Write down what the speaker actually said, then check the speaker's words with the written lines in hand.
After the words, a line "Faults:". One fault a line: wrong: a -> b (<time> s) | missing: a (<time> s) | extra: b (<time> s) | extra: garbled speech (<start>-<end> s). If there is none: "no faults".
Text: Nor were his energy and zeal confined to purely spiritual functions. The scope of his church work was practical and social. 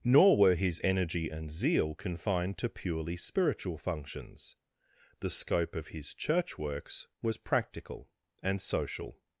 Nor were his energy and zeal confined to purely spiritual functions. The scope of his church works was practical and social.
Faults:
wrong: work -> works (6.6 s)